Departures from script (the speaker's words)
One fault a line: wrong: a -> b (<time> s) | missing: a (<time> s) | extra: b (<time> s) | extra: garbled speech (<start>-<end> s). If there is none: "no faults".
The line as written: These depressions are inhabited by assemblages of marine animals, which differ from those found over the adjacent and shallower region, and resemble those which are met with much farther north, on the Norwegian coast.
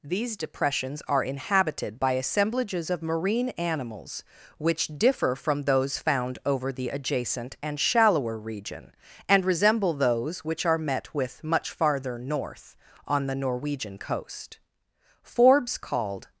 extra: Forbes called (15.2 s)